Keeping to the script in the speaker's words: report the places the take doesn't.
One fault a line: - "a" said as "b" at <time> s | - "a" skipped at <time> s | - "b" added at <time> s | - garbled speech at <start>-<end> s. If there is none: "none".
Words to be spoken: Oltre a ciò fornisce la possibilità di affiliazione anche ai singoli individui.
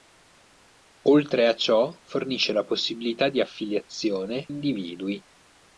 - "anche ai singoli" skipped at 4.5 s